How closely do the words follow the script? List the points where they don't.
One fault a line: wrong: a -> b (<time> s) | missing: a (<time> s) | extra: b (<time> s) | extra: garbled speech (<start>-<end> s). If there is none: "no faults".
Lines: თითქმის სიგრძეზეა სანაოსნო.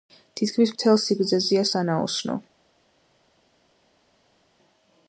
extra: მთელ (0.7 s)